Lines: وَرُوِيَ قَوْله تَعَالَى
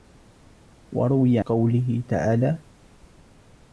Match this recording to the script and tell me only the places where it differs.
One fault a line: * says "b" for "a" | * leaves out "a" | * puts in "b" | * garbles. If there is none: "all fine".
all fine